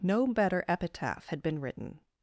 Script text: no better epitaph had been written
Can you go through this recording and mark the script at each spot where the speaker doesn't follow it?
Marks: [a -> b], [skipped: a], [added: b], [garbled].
no better epitaph had been written